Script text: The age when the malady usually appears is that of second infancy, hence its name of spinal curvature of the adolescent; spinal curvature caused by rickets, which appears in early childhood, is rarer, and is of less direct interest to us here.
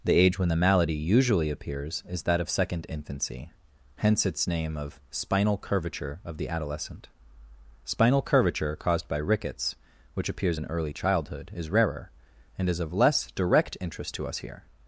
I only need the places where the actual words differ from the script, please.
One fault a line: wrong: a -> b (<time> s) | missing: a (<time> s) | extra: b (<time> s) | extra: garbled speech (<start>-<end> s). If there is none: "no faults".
no faults